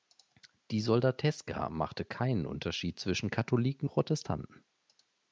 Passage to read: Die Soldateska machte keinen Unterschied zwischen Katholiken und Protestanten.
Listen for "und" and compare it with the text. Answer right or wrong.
wrong